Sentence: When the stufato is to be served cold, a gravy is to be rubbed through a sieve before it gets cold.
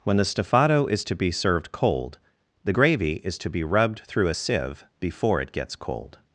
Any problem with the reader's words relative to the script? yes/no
yes